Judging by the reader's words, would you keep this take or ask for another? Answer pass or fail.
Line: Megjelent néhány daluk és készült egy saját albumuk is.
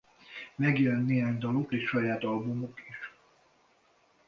fail